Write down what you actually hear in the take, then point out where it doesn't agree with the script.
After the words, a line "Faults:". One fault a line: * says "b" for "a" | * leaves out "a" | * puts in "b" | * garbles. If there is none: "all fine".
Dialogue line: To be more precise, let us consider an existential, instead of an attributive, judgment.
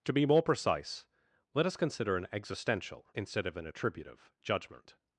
To be more precise, let us consider an existential, instead of an attributive, judgment.
Faults:
all fine